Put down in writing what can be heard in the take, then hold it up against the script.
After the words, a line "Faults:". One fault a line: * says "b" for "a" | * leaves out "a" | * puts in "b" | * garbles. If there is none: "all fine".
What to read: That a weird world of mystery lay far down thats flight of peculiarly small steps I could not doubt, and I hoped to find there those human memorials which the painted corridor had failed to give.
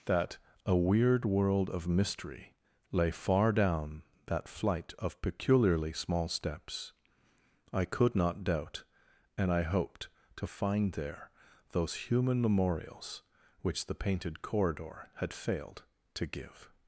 That a weird world of mystery lay far down that flight of peculiarly small steps I could not doubt, and I hoped to find there those human memorials which the painted corridor had failed to give.
Faults:
* says "that" for "thats"